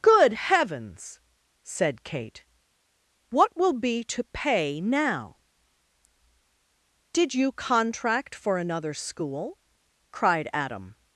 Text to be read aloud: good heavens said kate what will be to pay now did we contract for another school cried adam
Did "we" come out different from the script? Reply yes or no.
yes